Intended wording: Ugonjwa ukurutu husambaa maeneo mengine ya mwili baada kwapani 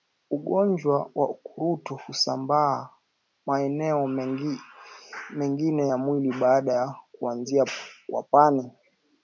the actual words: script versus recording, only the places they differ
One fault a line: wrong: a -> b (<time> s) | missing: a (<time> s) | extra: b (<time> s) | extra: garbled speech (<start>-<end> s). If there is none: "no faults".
extra: wa (1.1 s)
extra: ya kuanzia (6.7 s)